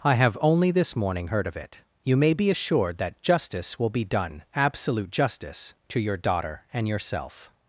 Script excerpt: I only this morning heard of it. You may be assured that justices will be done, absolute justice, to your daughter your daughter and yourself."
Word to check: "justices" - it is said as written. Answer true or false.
false